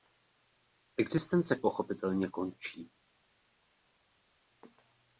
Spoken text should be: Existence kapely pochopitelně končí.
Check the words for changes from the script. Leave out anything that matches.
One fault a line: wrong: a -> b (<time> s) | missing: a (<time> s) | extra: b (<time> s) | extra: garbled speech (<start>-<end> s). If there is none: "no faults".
missing: kapely (1.6 s)